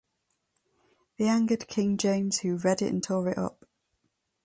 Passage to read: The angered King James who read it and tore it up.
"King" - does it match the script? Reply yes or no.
yes